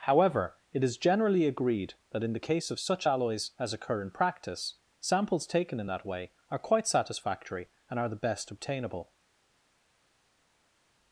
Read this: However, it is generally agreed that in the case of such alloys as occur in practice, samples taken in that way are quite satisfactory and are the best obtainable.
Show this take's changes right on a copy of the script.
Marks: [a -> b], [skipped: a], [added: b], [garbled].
However, it is generally agreed that in the case of such alloys as occur in practice, samples taken in that way are quite satisfactory and are the best obtainable.